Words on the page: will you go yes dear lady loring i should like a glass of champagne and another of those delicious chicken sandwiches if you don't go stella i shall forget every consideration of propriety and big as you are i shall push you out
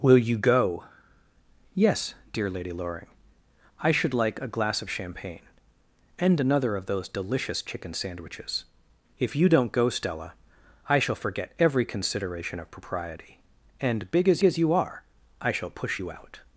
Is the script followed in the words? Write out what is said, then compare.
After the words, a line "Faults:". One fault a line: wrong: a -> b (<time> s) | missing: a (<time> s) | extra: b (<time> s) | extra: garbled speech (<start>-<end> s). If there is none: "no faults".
will you go yes dear lady loring i should like a glass of champagne and another of those delicious chicken sandwiches if you don't go stella i shall forget every consideration of propriety and big as as you are i shall push you out
Faults:
extra: as (14.4 s)